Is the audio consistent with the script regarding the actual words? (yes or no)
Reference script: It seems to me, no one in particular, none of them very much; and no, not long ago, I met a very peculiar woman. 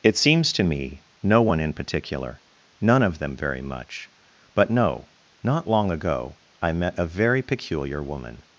no